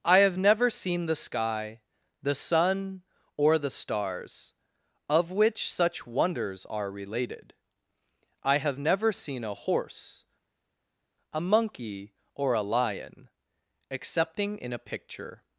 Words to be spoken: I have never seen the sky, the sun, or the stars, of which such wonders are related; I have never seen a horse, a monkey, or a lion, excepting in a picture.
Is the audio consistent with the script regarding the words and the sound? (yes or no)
yes